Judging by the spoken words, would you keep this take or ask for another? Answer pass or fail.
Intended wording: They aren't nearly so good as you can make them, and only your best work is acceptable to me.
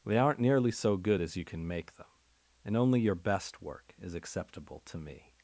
pass